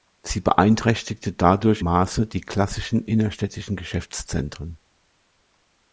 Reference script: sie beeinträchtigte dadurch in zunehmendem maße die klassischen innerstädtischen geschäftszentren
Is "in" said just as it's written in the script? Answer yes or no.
no